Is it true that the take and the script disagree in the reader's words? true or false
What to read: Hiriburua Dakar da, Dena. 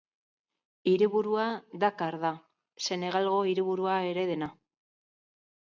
true